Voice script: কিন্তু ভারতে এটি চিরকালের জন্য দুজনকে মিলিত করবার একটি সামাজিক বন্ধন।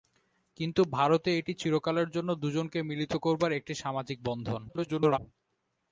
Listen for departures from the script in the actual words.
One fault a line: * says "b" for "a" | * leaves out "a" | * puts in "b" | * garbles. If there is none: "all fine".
* garbles